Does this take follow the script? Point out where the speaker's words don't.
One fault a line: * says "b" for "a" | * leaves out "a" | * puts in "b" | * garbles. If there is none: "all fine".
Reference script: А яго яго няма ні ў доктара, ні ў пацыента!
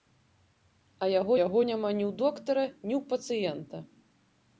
all fine